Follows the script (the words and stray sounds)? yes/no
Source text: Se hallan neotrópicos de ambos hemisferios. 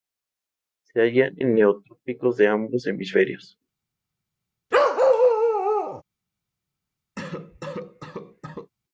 no